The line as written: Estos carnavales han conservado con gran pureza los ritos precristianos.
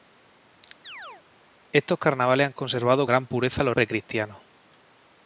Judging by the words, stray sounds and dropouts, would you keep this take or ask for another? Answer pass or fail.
fail